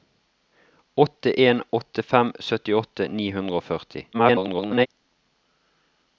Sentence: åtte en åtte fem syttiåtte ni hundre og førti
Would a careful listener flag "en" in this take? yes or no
no